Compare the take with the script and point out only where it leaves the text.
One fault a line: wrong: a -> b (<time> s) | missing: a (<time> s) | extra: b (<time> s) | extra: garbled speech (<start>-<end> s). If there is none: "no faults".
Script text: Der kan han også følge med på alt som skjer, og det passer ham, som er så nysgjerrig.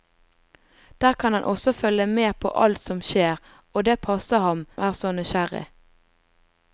missing: som (4.7 s)